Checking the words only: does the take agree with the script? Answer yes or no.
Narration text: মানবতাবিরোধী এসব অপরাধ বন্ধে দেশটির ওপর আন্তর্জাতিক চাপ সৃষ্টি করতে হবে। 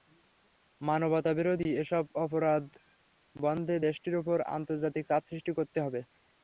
yes